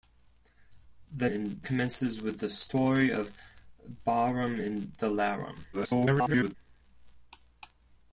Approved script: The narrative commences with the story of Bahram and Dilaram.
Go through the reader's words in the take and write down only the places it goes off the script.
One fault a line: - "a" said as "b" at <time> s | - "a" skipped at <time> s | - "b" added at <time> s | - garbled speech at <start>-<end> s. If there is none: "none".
- "narrative" said as "and" at 1.3 s
- garbled speech at 5.7-6.6 s